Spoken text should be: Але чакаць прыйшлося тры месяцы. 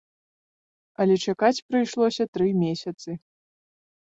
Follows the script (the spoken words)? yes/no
yes